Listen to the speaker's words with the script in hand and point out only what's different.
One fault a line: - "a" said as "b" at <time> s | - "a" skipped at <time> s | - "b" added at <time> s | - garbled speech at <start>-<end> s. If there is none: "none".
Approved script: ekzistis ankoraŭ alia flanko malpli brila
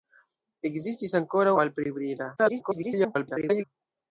- "alia flanko" skipped at 1.5 s
- garbled speech at 2.4-3.6 s